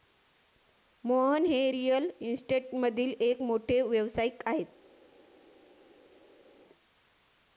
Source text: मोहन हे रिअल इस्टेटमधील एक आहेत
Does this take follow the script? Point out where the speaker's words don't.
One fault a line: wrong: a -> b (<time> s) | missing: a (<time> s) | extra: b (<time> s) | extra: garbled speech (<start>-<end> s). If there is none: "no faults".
extra: मोठे व्यावसायिक (3.4 s)